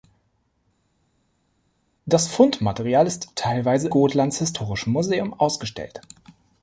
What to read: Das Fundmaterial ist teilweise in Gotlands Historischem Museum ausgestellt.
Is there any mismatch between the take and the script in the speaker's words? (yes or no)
yes